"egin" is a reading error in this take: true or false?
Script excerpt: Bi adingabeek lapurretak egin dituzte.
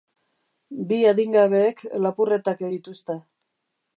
true